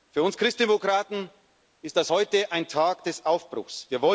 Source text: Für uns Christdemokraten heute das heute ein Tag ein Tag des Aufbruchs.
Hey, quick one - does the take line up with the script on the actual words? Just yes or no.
no